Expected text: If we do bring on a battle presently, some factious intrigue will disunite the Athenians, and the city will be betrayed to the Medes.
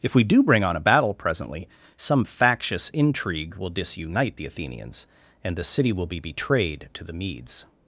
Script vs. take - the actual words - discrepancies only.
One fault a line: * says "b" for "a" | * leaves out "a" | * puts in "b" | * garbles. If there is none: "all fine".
all fine